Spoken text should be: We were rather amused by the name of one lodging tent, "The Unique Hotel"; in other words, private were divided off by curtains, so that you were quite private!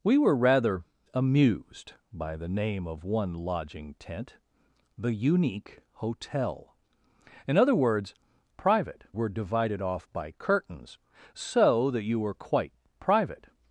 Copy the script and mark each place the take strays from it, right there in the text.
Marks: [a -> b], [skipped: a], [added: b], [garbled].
We were rather amused by the name of one lodging tent, "The Unique Hotel"; in other words, private were divided off by curtains, so that you were quite private!